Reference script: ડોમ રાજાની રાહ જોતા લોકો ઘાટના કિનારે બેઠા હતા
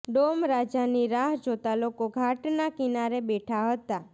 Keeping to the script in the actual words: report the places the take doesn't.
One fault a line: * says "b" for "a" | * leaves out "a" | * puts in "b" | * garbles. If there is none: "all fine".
all fine